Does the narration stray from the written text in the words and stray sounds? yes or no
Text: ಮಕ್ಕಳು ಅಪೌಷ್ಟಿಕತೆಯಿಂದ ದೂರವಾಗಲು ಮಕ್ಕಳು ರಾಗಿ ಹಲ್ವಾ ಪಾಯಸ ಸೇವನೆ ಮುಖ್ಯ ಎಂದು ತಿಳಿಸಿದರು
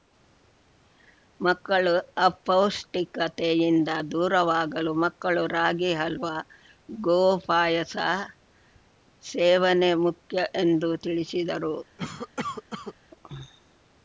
yes